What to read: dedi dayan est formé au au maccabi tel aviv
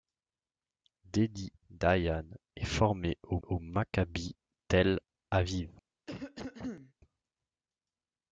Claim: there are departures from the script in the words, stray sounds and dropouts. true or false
true